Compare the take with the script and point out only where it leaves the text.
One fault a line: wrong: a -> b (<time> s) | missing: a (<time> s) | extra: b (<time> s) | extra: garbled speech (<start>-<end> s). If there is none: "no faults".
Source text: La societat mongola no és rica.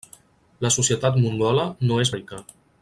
no faults